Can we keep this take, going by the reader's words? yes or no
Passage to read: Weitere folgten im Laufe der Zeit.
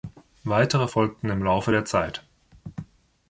yes